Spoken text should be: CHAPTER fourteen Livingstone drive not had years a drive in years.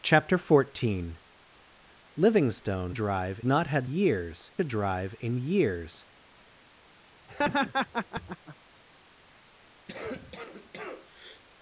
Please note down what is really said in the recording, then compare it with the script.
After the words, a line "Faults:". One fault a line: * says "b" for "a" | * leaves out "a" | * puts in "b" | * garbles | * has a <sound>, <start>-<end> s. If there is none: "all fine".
CHAPTER fourteen Livingstone drive not had years a drive in years.
Faults:
* has a laugh, 7.3-8.6 s
* has a cough, 9.9-11.4 s